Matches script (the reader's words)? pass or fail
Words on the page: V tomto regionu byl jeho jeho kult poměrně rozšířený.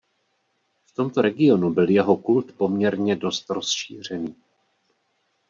fail